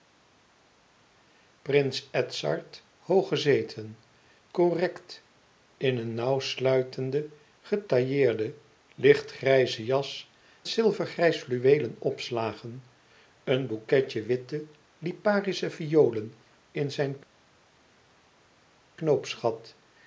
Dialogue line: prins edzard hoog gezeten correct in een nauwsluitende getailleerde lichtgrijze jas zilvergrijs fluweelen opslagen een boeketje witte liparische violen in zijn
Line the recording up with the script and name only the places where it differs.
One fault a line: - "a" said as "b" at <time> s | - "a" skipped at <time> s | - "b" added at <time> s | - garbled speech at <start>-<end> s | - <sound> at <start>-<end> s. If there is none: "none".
none